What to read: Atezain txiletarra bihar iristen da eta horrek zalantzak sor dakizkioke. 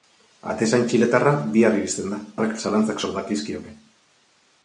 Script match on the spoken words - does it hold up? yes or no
no